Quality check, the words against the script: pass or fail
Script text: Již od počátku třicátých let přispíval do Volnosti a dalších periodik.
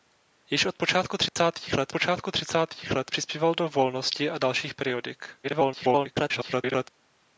fail